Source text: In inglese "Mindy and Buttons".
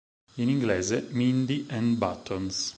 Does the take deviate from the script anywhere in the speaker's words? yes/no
no